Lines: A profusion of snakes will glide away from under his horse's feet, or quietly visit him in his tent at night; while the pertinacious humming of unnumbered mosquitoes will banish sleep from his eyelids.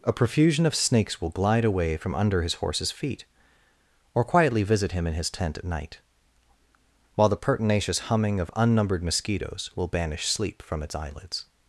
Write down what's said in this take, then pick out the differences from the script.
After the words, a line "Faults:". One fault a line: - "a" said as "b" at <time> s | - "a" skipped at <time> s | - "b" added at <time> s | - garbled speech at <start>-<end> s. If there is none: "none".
A profusion of snakes will glide away from under his horse's feet, or quietly visit him in his tent at night; while the pertinacious humming of unnumbered mosquitoes will banish sleep from its eyelids.
Faults:
- "his" said as "its" at 10.8 s